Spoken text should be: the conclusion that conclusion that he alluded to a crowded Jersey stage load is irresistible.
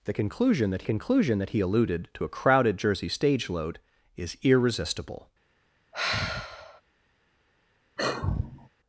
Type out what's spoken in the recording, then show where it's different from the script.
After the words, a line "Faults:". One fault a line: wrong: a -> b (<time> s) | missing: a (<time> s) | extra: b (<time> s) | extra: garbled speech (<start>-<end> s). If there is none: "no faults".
the conclusion that conclusion that he alluded to a crowded Jersey stage load is irresistible.
Faults:
no faults